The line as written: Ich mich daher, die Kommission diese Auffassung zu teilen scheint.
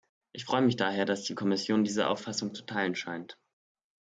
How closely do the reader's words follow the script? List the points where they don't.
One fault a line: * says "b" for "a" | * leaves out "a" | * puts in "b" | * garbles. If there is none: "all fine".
* puts in "freue"
* puts in "dass"